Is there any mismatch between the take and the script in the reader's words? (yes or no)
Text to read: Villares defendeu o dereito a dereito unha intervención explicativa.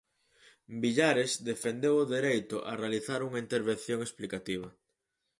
yes